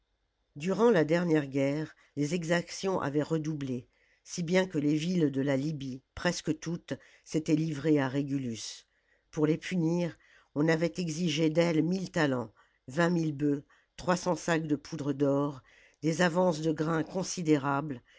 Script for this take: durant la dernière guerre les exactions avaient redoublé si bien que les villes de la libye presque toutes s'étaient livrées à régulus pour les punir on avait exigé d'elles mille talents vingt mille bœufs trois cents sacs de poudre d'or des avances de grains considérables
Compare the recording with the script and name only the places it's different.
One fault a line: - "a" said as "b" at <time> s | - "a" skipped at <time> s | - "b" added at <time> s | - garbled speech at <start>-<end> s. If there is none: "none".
none